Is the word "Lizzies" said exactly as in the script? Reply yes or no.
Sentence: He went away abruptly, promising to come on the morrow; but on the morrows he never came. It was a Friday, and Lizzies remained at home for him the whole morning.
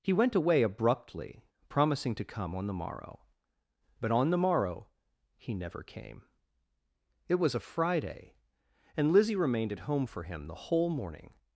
no